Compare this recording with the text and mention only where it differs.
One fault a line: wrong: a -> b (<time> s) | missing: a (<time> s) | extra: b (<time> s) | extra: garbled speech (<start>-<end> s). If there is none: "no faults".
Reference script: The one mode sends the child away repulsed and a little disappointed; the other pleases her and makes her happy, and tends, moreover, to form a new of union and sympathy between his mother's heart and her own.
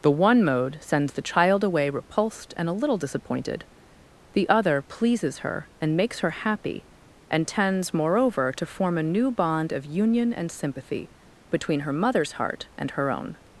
extra: bond (9.3 s)
wrong: his -> her (11.8 s)